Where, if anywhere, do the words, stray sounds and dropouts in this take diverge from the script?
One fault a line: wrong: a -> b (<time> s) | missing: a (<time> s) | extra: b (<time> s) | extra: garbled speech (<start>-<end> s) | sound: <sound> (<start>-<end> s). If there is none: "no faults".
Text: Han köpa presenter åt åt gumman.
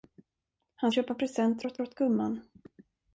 no faults